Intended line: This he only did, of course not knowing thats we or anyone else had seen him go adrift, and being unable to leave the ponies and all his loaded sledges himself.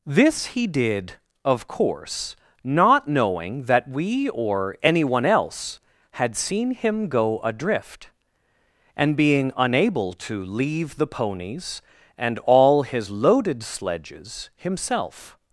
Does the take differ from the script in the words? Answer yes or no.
yes